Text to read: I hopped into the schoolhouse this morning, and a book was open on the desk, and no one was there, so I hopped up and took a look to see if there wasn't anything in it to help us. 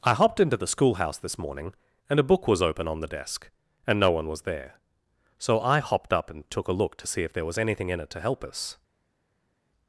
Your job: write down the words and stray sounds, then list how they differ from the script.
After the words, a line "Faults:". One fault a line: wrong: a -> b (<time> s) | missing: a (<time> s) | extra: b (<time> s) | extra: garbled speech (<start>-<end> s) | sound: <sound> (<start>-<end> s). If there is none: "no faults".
I hopped into the schoolhouse this morning, and a book was open on the desk, and no one was there, so I hopped up and took a look to see if there was anything in it to help us.
Faults:
wrong: wasn't -> was (7.5 s)